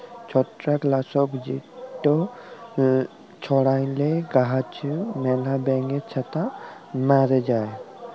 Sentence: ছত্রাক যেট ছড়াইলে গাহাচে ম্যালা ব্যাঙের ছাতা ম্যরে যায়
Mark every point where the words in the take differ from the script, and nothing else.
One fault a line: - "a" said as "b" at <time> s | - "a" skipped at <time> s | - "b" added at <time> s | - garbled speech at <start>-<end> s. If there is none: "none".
- "লাসক" added at 0.8 s